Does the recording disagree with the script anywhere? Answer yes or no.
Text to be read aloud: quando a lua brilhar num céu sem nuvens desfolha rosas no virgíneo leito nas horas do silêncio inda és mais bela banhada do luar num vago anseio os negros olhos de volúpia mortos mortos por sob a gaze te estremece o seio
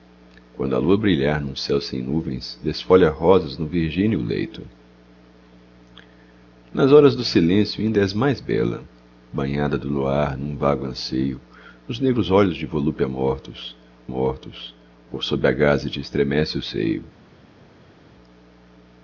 no